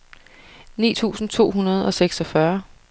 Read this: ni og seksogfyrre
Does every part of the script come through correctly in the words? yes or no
no